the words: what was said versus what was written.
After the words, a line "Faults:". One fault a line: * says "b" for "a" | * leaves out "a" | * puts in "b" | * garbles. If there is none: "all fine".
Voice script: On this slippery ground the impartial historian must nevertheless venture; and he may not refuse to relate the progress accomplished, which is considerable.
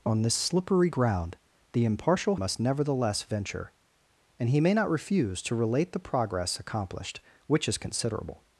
On this slippery ground the impartial must nevertheless venture; and he may not refuse to relate the progress accomplished, which is considerable.
Faults:
* leaves out "historian"